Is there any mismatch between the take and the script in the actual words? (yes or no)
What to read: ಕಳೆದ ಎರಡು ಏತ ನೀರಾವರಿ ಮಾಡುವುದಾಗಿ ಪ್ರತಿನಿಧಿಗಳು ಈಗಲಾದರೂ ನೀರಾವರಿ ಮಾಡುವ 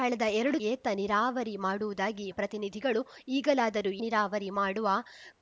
no